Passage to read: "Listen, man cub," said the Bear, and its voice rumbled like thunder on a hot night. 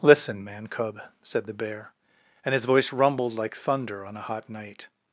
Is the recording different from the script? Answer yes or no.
yes